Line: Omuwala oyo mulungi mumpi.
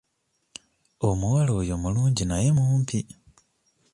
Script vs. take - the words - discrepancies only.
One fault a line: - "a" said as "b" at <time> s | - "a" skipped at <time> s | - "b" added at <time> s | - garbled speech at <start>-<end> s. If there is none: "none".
- "naye" added at 2.2 s